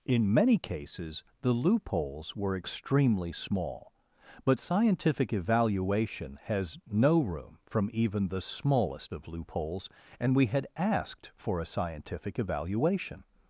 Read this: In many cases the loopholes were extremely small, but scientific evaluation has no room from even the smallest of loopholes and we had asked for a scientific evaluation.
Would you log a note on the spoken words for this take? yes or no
no